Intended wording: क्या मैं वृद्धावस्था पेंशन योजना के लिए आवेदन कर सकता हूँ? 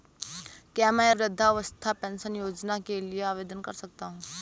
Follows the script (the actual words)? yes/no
yes